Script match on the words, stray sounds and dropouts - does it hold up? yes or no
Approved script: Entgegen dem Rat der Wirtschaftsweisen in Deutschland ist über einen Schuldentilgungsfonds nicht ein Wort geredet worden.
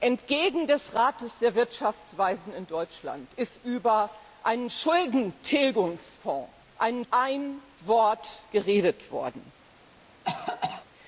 no